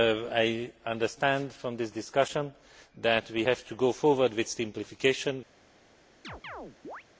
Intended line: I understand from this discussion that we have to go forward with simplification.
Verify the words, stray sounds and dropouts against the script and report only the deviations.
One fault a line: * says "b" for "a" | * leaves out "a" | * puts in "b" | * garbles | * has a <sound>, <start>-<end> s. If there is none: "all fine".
* has a chirp, 6.2-7.0 s